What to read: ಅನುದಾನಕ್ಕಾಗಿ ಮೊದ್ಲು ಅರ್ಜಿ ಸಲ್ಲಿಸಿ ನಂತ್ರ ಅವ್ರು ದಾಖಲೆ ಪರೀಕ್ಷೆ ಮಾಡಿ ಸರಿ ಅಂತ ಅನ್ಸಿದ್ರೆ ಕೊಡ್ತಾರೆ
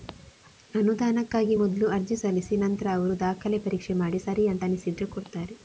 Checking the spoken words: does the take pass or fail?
pass